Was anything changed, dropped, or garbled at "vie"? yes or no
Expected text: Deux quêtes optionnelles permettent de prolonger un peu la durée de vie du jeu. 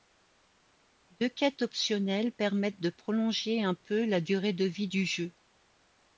no